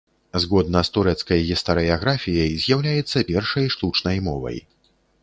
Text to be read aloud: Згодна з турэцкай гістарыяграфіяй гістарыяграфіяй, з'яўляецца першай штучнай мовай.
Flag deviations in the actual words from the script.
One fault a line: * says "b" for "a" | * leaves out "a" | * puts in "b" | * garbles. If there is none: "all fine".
* leaves out "гістарыяграфіяй"